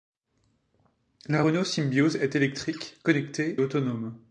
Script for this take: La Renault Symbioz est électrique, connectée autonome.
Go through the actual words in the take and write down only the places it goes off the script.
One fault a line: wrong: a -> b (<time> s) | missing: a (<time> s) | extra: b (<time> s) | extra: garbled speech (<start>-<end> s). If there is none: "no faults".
no faults